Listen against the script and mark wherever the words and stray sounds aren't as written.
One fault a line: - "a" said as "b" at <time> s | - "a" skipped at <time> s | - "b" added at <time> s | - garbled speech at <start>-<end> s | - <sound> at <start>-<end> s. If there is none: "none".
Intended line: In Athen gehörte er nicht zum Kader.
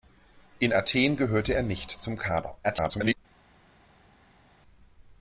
- garbled speech at 2.6-3.2 s